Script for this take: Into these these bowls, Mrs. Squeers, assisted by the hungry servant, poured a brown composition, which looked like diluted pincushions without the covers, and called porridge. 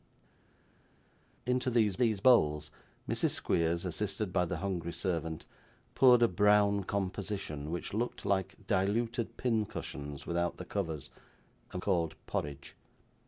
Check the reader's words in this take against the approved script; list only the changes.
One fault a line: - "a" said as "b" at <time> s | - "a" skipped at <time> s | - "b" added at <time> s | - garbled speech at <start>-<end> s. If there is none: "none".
none